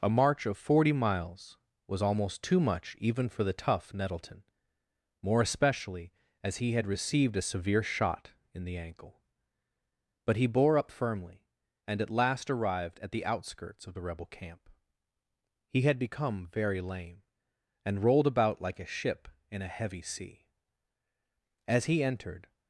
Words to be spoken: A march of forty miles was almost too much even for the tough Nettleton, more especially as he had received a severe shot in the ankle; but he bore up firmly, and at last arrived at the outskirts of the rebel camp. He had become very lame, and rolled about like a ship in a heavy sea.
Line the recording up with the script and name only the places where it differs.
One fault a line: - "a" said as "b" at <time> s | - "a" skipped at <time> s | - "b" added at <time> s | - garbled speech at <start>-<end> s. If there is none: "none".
- "As he entered" added at 21.7 s